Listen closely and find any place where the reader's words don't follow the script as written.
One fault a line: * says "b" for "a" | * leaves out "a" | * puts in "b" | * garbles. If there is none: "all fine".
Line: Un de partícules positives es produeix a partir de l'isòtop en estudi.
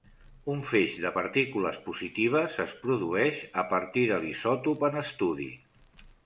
* puts in "feix"